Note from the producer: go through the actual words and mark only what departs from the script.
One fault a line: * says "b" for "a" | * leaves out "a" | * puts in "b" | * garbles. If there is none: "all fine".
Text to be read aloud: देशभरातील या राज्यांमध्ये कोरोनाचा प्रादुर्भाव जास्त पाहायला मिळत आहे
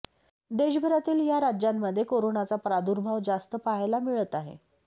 all fine